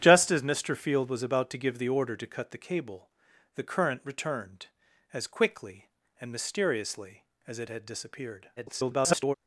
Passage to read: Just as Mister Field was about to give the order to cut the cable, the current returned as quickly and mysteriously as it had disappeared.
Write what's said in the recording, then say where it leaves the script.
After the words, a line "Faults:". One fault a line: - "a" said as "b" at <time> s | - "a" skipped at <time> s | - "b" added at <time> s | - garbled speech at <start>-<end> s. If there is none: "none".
Just as Mister Field was about to give the order to cut the cable, the current returned as quickly and mysteriously as it had disappeared. [garbled]
Faults:
- garbled speech at 8.6-9.3 s